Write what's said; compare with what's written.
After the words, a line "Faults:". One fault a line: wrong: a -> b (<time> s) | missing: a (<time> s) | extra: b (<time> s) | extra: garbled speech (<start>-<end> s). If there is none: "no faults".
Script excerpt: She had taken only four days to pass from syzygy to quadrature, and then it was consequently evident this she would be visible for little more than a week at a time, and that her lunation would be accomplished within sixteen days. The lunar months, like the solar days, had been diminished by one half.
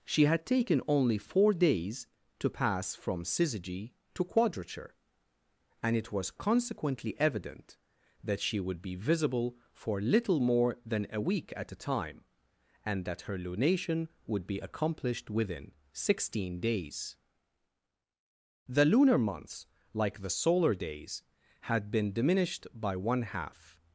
She had taken only four days to pass from syzygy to quadrature, and it was consequently evident that she would be visible for little more than a week at a time, and that her lunation would be accomplished within sixteen days. The lunar months, like the solar days, had been diminished by one half.
Faults:
missing: then (6.0 s)
wrong: this -> that (8.2 s)